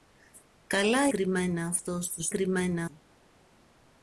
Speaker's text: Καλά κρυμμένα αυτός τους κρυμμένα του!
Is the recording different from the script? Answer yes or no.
no